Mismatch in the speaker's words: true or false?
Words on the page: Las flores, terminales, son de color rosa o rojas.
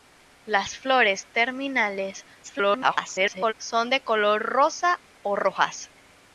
true